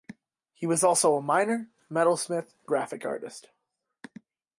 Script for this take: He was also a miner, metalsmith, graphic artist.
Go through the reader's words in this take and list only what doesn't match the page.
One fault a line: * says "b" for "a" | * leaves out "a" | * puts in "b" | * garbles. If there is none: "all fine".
all fine